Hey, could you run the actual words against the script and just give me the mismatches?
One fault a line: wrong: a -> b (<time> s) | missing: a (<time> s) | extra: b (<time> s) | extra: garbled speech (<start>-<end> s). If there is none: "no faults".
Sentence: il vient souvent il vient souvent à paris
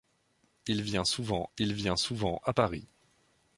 no faults